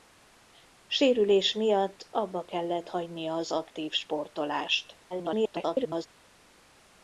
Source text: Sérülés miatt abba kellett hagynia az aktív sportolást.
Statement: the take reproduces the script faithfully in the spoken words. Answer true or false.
false